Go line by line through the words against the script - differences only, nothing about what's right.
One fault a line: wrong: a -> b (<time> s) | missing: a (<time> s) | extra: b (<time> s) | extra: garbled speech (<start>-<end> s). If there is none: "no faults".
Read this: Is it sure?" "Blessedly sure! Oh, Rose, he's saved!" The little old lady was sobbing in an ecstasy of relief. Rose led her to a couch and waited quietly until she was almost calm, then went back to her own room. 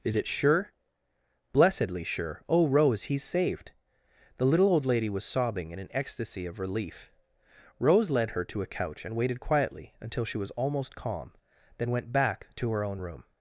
no faults